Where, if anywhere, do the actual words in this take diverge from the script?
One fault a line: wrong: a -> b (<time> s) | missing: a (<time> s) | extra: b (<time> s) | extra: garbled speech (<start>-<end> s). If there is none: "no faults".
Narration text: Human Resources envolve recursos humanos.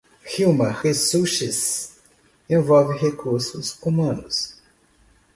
no faults